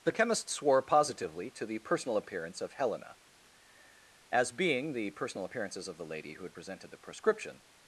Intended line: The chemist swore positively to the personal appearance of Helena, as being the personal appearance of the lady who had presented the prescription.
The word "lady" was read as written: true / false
true